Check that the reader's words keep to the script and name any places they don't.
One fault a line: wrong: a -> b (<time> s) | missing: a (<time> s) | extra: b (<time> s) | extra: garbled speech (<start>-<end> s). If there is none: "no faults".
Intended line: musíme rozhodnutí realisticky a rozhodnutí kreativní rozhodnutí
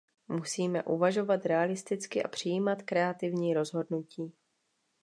wrong: rozhodnutí -> uvažovat (0.8 s)
wrong: rozhodnutí -> přijímat (2.3 s)